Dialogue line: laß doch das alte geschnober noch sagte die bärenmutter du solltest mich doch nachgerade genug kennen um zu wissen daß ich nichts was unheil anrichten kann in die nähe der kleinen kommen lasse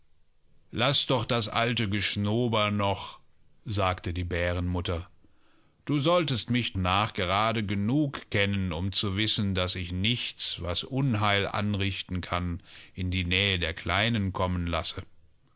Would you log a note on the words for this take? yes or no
yes